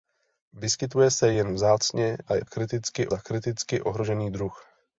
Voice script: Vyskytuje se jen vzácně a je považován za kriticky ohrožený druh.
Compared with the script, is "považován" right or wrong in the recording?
wrong